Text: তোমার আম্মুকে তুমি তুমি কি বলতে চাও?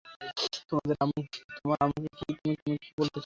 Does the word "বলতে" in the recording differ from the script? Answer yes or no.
no